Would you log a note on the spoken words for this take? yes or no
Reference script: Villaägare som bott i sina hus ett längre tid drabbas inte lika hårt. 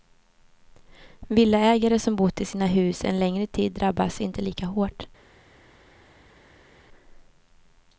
yes